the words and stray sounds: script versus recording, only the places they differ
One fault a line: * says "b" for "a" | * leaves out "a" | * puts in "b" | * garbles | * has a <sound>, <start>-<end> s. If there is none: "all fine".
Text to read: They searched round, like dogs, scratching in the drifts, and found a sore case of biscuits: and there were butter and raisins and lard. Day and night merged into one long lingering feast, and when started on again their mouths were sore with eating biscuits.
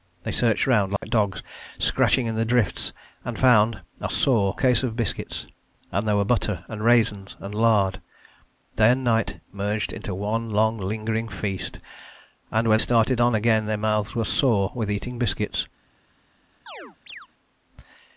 * has a dropout, 1.0-1.0 s
* has a chirp, 16.7-17.3 s